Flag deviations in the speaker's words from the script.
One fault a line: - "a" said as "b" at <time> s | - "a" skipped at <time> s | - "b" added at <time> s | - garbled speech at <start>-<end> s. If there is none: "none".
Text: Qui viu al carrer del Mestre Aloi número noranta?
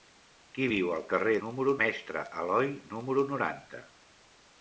- "del" said as "número" at 1.5 s